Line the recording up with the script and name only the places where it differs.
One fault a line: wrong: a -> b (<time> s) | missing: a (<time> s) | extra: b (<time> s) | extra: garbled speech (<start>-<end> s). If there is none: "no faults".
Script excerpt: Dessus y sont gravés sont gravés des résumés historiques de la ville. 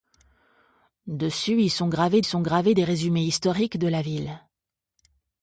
no faults